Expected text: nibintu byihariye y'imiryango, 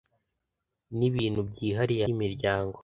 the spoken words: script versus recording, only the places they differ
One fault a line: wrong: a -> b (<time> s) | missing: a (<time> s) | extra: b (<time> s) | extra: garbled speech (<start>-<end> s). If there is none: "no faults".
no faults